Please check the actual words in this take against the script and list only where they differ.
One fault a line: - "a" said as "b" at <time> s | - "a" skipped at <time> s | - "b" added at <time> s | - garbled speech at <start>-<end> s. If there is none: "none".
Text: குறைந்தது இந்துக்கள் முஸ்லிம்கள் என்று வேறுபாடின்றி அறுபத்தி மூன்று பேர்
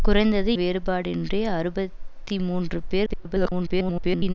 - "இந்துக்கள் முஸ்லிம்கள் என்று" skipped at 0.5 s
- garbled speech at 3.1-4.3 s